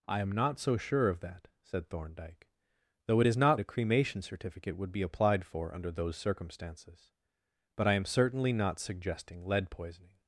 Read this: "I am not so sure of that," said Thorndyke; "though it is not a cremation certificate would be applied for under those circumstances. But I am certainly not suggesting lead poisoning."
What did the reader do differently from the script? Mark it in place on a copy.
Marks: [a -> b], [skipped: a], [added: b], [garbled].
"I am not so sure of that," said Thorndyke; "though it is not a cremation certificate would be applied for under those circumstances. But I am certainly not suggesting lead poisoning."